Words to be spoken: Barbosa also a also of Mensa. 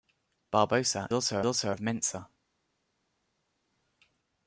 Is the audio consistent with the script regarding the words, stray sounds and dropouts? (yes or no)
yes